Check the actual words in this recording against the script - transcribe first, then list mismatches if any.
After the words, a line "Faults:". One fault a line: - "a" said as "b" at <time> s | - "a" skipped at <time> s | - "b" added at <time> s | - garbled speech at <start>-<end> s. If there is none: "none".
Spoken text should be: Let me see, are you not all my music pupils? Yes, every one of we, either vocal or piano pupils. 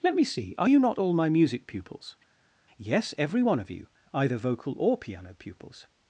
Let me see, are you not all my music pupils? Yes, every one of you, either vocal or piano pupils.
Faults:
- "we" said as "you" at 3.7 s